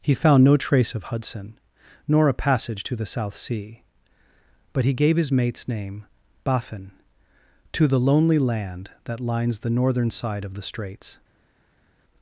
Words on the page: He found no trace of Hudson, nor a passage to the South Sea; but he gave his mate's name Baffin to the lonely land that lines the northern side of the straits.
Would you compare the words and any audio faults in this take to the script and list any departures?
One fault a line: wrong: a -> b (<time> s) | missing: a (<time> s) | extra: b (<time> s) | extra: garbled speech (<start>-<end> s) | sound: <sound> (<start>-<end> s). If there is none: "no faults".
no faults